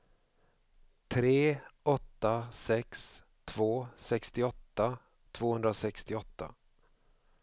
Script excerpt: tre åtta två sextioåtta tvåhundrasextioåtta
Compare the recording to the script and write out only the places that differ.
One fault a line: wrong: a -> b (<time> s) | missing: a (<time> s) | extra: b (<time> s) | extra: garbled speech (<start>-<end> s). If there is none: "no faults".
extra: sex (2.5 s)